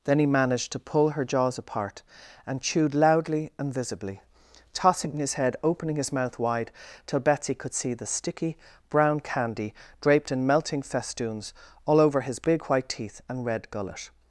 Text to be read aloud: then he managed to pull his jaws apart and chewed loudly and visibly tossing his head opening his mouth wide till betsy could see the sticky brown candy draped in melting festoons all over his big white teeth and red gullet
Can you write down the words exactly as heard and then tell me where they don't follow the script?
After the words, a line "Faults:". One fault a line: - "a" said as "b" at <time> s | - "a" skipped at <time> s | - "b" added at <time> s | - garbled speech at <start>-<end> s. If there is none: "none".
then he managed to pull her jaws apart and chewed loudly and visibly tossing his head opening his mouth wide till betsy could see the sticky brown candy draped in melting festoons all over his big white teeth and red gullet
Faults:
- "his" said as "her" at 1.1 s